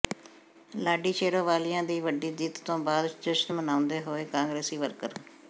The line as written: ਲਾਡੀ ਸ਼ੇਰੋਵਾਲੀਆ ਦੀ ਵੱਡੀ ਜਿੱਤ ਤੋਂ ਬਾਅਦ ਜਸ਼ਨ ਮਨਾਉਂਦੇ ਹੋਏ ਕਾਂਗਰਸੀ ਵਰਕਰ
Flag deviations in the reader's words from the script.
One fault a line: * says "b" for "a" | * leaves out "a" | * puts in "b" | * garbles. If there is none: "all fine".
all fine